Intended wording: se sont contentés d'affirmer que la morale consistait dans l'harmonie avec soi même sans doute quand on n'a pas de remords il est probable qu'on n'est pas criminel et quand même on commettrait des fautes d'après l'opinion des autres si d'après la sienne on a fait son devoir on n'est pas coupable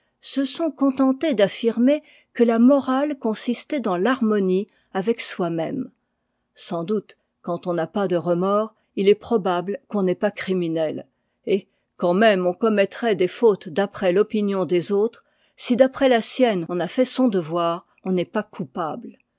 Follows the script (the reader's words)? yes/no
yes